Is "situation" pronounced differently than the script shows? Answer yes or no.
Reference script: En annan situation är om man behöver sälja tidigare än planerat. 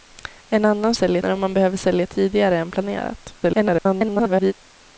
yes